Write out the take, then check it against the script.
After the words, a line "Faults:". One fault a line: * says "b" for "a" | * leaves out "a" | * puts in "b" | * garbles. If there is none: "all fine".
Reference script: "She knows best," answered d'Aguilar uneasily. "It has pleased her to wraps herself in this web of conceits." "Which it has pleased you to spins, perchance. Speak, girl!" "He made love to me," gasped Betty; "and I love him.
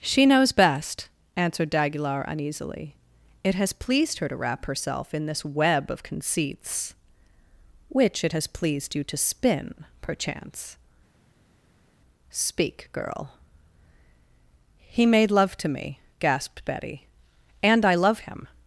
"She knows best," answered d'Aguilar uneasily. "It has pleased her to wrap herself in this web of conceits." "Which it has pleased you to spin, perchance. Speak, girl!" "He made love to me," gasped Betty; "and I love him.
Faults:
* says "wrap" for "wraps"
* says "spin" for "spins"